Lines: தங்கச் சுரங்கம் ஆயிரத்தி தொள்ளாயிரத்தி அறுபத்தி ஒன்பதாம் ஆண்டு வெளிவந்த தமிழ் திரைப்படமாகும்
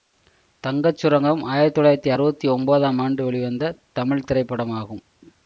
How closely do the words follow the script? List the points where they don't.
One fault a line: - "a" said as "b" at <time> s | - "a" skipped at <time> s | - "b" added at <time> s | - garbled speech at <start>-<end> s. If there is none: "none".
none